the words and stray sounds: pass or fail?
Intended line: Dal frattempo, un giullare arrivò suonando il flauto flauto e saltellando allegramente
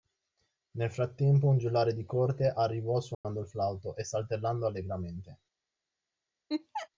fail